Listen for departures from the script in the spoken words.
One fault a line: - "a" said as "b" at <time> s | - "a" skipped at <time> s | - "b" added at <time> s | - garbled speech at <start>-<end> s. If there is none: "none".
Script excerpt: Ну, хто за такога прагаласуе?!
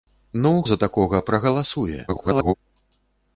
- "хто" skipped at 0.5 s
- garbled speech at 2.1-2.5 s